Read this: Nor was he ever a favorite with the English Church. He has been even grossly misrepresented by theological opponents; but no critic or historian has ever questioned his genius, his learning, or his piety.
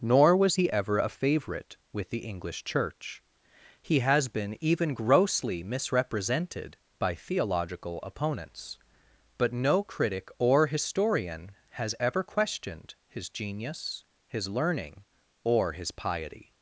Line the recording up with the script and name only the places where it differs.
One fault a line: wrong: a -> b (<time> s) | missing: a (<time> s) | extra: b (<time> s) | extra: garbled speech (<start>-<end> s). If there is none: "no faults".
no faults